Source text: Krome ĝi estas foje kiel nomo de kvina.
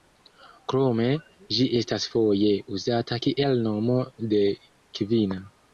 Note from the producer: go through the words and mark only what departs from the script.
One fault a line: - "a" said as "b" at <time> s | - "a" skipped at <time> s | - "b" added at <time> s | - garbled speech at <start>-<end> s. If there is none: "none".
- "uzata" added at 2.8 s